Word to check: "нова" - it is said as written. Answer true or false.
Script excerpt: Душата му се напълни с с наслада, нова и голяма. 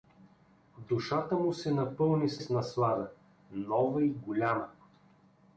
true